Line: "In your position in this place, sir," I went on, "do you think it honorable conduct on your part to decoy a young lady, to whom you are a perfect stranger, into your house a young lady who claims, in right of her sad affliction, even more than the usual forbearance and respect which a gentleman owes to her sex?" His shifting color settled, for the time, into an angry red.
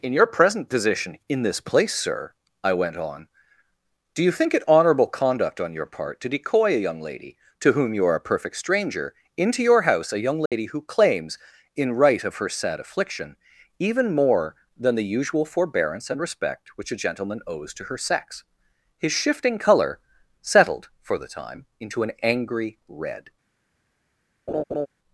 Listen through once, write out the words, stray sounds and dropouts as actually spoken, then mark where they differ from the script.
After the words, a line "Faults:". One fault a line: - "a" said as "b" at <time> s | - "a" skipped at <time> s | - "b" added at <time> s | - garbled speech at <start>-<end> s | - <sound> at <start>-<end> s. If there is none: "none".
"In your present position in this place, sir," I went on, "do you think it honorable conduct on your part to decoy a young lady, to whom you are a perfect stranger, into your house a young lady who claims, in right of her sad affliction, even more than the usual forbearance and respect which a gentleman owes to her sex?" His shifting color settled, for the time, into an angry red.
Faults:
- "present" added at 0.2 s
- dropout at 10.5-10.5 s
- laugh at 24.5-24.9 s